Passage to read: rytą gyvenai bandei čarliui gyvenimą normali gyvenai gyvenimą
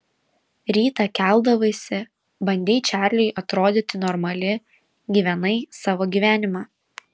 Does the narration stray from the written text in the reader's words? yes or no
yes